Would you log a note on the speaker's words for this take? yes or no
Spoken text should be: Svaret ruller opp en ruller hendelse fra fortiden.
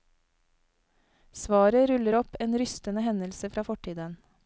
yes